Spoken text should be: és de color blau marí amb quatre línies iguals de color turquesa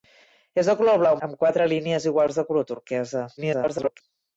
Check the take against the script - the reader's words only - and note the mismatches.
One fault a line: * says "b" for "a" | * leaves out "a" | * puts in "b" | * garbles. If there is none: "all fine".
* leaves out "marí"
* garbles